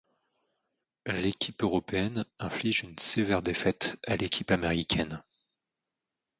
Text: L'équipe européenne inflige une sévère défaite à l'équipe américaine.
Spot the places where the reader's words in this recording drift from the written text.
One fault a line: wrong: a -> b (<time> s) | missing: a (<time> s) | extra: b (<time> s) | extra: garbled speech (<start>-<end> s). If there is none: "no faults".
no faults